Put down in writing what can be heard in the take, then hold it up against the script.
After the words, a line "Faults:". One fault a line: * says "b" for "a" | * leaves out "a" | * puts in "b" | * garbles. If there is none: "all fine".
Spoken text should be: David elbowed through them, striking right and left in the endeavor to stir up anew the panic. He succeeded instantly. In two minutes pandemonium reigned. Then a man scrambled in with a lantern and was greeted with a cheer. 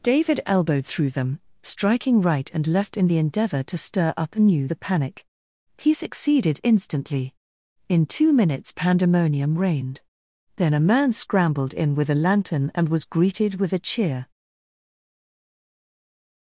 David elbowed through them, striking right and left in the endeavor to stir up anew the panic. He succeeded instantly. In two minutes pandemonium reigned. Then a man scrambled in with a lantern and was greeted with a cheer.
Faults:
all fine